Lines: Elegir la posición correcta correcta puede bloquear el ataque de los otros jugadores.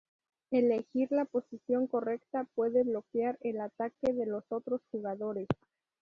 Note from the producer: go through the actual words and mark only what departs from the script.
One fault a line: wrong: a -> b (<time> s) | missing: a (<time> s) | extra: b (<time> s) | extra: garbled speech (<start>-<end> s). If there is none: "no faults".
missing: correcta (2.5 s)